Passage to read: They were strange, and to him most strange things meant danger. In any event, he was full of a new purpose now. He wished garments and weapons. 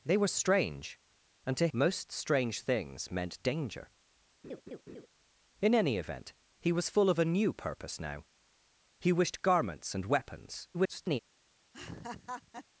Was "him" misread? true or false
true